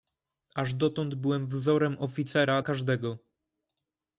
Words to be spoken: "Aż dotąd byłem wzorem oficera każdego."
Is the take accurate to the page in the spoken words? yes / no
yes